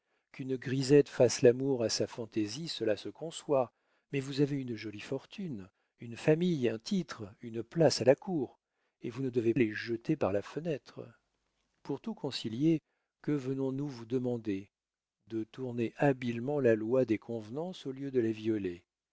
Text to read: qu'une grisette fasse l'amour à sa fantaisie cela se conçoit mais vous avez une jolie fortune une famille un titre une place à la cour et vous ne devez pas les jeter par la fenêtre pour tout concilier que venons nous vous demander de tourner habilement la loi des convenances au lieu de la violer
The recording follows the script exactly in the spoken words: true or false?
false